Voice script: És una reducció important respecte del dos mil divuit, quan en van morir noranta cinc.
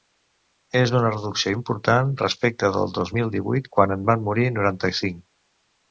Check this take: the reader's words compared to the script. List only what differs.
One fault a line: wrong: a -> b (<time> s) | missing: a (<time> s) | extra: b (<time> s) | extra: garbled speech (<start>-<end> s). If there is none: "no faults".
no faults